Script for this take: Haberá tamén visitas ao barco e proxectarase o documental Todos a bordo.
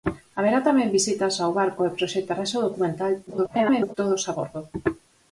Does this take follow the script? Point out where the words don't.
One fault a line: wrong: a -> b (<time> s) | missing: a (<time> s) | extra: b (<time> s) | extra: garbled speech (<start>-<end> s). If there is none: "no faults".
extra: garbled speech (3.3-4.0 s)